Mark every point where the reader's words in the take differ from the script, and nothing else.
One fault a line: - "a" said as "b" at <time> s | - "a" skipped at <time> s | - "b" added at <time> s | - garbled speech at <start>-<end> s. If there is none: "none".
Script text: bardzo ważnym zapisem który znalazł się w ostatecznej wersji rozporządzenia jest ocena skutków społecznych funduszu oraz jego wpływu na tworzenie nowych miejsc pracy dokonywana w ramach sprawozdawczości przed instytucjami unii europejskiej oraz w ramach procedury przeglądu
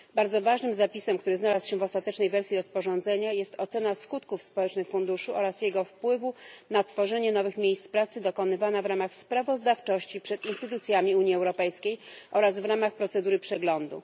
none